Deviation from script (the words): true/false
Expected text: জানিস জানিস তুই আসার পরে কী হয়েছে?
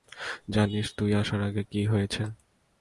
true